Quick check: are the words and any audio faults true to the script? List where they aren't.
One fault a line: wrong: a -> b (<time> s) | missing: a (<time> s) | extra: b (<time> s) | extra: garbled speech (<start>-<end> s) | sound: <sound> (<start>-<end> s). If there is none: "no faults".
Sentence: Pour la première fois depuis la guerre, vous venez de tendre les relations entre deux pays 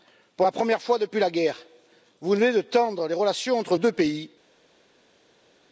no faults